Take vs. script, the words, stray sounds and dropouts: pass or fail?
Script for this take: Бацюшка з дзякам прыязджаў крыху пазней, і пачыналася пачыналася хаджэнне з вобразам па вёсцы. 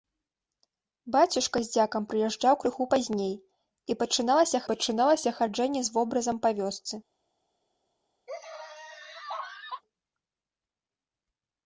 fail